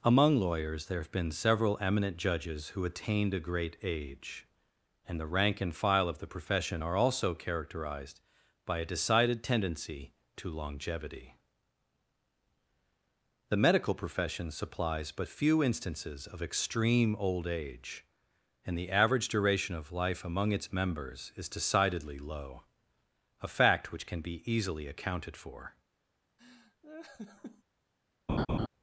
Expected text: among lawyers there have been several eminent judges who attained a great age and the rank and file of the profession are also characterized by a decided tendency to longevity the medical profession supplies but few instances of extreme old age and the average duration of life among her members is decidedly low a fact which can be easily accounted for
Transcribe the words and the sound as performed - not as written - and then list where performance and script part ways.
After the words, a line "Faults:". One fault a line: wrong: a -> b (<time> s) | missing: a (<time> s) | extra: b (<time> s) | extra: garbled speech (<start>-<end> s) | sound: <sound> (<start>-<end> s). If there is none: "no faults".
among lawyers there have been several eminent judges who attained a great age and the rank and file of the profession are also characterized by a decided tendency to longevity the medical profession supplies but few instances of extreme old age and the average duration of life among its members is decidedly low a fact which can be easily accounted for
Faults:
wrong: her -> its (20.5 s)
sound: laugh (26.4-27.6 s)
sound: laugh (28.3-28.7 s)